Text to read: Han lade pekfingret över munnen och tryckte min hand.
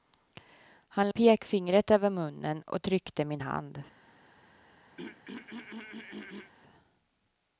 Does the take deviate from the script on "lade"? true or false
true